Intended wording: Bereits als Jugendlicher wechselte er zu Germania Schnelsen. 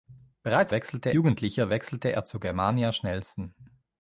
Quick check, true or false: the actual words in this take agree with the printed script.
false